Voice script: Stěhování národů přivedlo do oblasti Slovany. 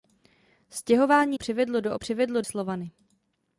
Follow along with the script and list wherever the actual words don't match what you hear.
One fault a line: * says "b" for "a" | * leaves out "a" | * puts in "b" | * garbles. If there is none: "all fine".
* leaves out "národů"
* says "přivedlo" for "oblasti"